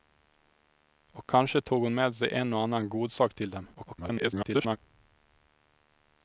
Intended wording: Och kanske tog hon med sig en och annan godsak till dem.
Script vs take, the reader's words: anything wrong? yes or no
yes